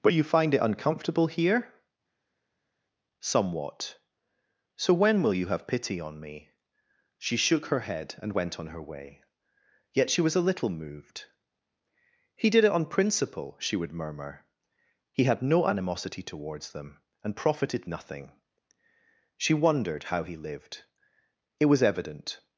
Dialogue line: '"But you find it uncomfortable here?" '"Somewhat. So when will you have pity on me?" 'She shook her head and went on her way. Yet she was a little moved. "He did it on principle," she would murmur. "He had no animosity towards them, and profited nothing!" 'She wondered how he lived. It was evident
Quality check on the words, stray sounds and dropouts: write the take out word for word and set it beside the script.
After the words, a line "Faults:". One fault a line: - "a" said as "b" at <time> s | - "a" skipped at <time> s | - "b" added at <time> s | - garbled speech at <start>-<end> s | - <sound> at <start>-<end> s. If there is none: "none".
'"But you find it uncomfortable here?" '"Somewhat. So when will you have pity on me?" 'She shook her head and went on her way. Yet she was a little moved. "He did it on principle," she would murmur. "He had no animosity towards them, and profited nothing!" 'She wondered how he lived. It was evident
Faults:
none